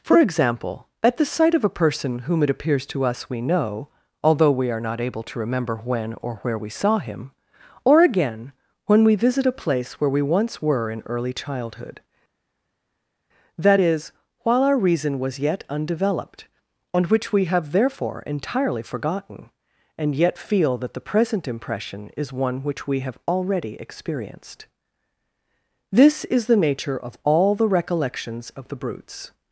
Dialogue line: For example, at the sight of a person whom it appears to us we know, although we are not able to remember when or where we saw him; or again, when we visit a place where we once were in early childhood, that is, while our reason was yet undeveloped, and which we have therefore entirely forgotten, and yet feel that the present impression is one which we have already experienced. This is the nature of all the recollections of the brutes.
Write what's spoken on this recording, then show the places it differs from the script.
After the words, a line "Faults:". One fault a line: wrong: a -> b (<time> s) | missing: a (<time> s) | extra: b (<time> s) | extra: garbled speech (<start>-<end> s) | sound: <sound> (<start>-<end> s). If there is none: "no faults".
For example, at the sight of a person whom it appears to us we know, although we are not able to remember when or where we saw him; or again, when we visit a place where we once were in early childhood, that is, while our reason was yet undeveloped, and which we have therefore entirely forgotten, and yet feel that the present impression is one which we have already experienced. This is the nature of all the recollections of the brutes.
Faults:
no faults